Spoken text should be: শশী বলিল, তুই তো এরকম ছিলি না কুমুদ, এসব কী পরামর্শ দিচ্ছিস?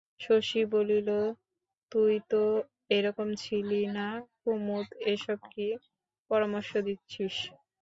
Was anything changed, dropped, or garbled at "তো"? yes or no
no